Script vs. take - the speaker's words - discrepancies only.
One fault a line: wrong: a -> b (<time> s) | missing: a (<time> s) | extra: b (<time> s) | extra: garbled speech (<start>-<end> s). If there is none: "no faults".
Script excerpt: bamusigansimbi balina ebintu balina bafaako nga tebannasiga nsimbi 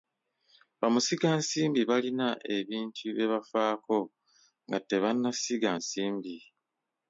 wrong: balina -> bye (3.1 s)